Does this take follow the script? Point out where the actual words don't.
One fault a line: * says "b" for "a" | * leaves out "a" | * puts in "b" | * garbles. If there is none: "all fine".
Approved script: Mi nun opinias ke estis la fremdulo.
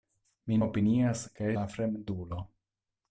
* leaves out "nun"
* leaves out "estis"